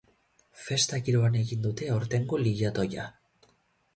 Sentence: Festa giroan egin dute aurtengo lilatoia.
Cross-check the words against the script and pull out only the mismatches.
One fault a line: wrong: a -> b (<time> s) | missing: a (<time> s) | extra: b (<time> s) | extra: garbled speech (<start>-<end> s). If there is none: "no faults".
no faults